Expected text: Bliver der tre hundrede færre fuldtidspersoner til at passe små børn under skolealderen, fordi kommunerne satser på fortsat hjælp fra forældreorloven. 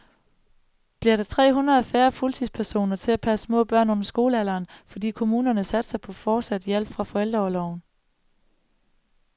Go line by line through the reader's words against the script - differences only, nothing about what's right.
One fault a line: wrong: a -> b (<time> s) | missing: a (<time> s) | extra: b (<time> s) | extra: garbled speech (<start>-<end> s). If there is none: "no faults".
no faults